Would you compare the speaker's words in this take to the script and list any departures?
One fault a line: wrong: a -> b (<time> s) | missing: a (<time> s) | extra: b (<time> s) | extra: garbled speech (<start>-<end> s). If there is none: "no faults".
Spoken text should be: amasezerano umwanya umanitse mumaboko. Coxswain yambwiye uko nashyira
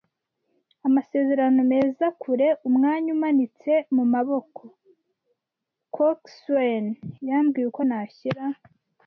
extra: meza kure (1.7 s)